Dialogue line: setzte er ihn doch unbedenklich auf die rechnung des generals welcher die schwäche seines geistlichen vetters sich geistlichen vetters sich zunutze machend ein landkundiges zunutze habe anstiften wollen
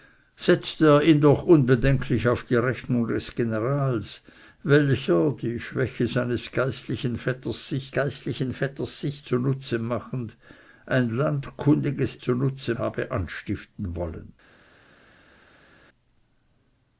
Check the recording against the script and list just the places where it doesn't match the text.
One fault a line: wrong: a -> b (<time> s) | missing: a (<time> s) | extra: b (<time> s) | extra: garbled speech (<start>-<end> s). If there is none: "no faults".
no faults